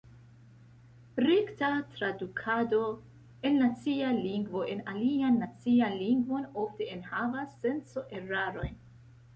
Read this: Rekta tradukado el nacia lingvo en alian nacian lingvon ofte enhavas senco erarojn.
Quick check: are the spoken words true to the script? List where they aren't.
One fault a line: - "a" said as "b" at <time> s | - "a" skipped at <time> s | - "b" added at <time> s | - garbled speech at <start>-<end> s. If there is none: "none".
none